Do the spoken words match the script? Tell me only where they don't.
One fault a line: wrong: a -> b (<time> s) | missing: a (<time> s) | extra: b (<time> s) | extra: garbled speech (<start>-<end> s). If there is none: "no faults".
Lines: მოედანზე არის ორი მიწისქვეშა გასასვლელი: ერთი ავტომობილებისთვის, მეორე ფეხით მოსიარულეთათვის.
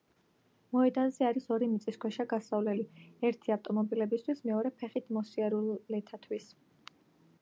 no faults